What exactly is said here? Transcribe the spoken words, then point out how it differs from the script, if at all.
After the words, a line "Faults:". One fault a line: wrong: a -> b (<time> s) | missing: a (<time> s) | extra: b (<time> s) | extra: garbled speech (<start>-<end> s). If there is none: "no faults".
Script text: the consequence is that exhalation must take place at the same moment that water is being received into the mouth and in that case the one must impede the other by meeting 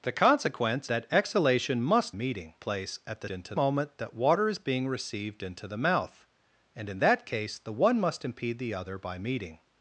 the consequence that exhalation must meeting place at the into moment that water is being received into the mouth and in that case the one must impede the other by meeting
Faults:
missing: is (0.9 s)
wrong: take -> meeting (2.1 s)
wrong: same -> into (3.3 s)